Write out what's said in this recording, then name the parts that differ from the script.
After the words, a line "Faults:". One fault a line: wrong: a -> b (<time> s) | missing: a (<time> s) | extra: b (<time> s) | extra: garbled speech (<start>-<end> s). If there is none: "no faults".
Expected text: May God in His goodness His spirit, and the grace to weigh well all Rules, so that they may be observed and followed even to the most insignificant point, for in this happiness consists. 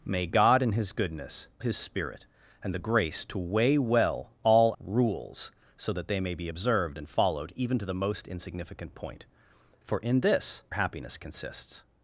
May God in His goodness His spirit, and the grace to weigh well all Rules, so that they may be observed and followed even to the most insignificant point, for in this happiness consists.
Faults:
no faults